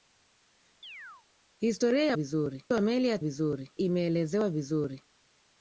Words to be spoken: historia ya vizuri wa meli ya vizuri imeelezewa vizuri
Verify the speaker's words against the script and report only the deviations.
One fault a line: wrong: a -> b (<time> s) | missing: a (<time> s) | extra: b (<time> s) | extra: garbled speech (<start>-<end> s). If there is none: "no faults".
no faults